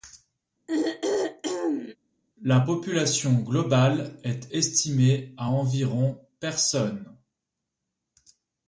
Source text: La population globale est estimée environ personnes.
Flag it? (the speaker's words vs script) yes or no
yes